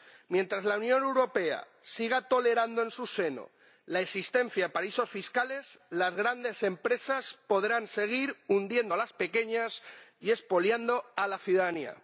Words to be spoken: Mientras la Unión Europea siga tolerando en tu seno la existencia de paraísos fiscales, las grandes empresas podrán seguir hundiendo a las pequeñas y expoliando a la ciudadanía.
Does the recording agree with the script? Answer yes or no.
no